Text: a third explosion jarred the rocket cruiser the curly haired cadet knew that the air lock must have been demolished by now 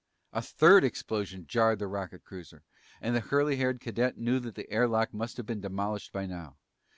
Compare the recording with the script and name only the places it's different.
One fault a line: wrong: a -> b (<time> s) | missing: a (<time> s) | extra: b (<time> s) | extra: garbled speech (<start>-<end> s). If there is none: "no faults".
extra: and (3.0 s)